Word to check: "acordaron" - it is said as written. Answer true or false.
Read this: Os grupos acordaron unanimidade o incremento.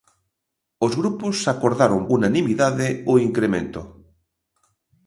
true